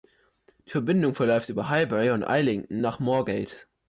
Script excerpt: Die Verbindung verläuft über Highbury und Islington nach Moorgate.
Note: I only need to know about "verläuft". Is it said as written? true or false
true